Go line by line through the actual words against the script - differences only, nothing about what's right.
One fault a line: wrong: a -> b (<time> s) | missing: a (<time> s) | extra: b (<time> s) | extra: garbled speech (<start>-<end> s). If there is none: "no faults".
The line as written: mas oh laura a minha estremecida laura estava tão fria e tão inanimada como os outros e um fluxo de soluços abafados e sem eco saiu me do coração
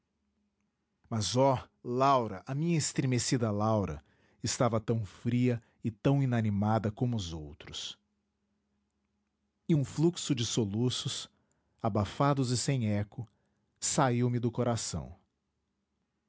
no faults